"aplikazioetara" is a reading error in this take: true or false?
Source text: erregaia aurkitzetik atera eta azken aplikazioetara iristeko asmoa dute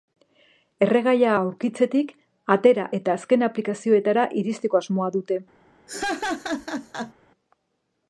false